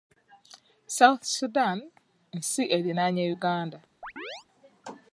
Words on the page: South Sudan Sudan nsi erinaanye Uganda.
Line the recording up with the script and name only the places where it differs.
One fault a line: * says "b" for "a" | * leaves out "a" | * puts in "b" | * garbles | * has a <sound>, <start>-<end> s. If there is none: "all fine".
* leaves out "Sudan"
* has a chirp, 4.0-4.5 s